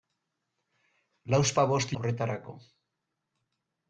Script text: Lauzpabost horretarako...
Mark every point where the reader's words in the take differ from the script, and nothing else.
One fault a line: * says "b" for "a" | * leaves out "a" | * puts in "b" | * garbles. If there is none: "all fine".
all fine